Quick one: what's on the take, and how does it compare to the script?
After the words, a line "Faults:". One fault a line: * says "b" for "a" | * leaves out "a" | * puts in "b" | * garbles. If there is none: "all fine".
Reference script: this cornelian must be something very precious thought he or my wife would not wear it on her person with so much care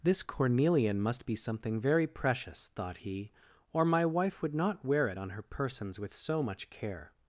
this cornelian must be something very precious thought he or my wife would not wear it on her persons with so much care
Faults:
* says "persons" for "person"